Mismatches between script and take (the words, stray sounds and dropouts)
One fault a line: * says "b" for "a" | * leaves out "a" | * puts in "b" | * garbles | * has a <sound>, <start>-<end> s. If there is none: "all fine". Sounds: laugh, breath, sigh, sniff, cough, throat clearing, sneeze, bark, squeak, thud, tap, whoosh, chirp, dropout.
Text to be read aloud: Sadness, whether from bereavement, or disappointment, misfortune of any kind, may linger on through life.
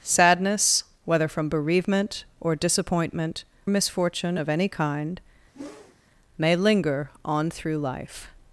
* has a whoosh, 5.5-6.0 s